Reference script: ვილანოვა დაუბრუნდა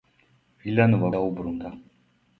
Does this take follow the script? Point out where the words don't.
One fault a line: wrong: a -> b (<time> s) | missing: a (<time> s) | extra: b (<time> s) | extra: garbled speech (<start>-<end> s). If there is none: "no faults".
no faults